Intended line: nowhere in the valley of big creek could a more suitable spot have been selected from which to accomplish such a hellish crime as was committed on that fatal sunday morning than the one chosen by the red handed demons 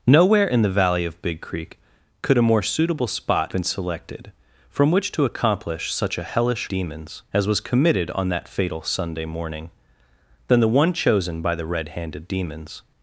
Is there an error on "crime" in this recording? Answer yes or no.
yes